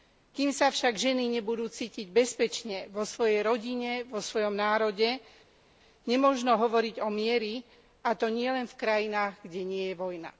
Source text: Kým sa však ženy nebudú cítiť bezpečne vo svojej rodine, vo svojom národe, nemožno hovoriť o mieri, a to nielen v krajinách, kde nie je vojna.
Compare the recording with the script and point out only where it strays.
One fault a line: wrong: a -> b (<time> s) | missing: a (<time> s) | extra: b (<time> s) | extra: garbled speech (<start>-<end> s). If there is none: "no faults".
no faults